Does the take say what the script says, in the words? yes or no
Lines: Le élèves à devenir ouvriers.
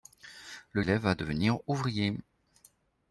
yes